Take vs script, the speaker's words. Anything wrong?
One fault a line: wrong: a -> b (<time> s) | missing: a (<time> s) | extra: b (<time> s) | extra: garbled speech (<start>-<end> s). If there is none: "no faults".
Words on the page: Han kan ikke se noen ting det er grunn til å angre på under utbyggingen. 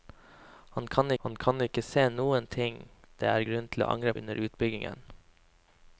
extra: han kan (1.2 s)
missing: på (4.1 s)